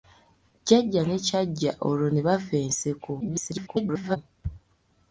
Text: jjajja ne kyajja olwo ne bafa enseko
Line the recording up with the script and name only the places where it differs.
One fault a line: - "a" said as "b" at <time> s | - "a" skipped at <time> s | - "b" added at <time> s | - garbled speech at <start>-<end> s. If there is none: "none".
- garbled speech at 3.2-4.2 s